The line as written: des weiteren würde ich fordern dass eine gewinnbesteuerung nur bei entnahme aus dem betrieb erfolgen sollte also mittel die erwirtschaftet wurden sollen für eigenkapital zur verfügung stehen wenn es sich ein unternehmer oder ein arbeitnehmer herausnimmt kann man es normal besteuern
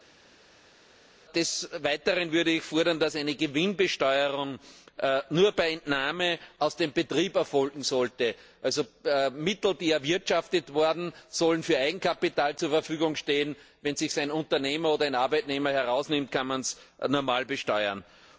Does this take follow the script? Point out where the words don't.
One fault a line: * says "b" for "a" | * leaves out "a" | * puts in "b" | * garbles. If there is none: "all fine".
all fine